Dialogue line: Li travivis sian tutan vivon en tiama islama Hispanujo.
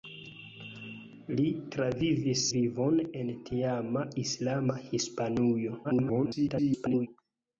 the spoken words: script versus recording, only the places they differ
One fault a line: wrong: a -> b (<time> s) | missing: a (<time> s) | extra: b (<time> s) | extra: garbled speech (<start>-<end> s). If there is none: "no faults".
missing: sian tutan (2.5 s)
extra: garbled speech (5.8-7.1 s)